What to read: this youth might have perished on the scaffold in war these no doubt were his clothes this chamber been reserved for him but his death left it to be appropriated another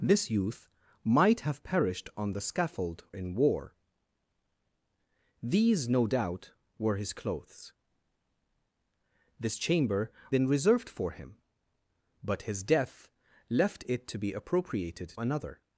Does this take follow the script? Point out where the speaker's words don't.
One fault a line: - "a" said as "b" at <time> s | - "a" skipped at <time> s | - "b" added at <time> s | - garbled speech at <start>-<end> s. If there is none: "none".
none